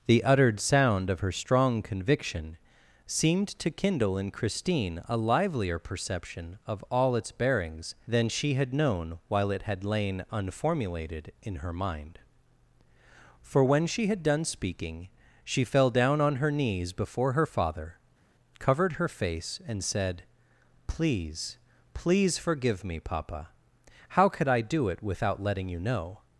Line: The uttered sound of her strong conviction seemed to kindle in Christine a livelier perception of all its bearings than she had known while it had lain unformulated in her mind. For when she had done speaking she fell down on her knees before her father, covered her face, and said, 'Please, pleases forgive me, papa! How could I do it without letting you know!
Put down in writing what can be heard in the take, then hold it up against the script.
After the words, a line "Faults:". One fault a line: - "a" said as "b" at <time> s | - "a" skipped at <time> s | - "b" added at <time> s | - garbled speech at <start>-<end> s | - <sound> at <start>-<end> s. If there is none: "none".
The uttered sound of her strong conviction seemed to kindle in Christine a livelier perception of all its bearings than she had known while it had lain unformulated in her mind. For when she had done speaking she fell down on her knees before her father, covered her face, and said, 'Please, please forgive me, papa! How could I do it without letting you know!
Faults:
- "pleases" said as "please" at 21.9 s